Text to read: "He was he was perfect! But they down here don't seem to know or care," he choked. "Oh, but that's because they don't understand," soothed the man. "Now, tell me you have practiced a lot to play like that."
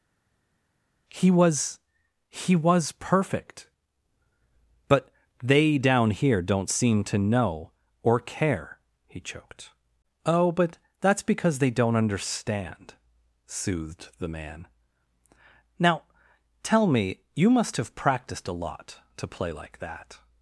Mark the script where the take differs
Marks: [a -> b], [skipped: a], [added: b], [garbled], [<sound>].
"He was he was perfect! But they down here don't seem to know or care," he choked. "Oh, but that's because they don't understand," soothed the man. "Now, tell me you [added: must] have practiced a lot to play like that."